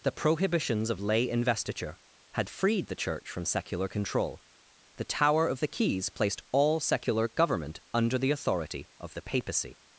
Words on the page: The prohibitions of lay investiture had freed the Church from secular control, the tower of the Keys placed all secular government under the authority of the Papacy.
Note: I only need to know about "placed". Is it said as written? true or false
true